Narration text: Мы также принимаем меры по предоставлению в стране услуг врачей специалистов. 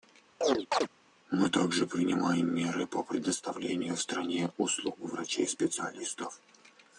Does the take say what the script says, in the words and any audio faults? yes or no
no